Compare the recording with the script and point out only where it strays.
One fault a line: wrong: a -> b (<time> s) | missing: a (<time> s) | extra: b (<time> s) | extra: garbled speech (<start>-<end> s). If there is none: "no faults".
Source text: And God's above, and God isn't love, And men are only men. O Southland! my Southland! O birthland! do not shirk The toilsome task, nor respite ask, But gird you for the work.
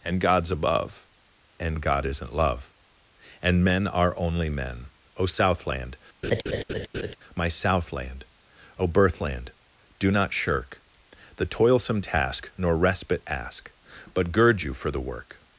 no faults